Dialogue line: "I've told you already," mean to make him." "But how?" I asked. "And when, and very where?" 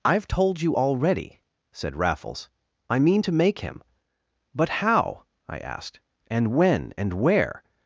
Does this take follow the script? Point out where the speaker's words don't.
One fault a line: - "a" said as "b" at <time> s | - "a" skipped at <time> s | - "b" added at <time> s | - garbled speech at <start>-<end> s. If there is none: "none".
- "said Raffles I" added at 1.7 s
- "very" skipped at 7.1 s